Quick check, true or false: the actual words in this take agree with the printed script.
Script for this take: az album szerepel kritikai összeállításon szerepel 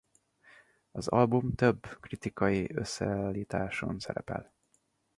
false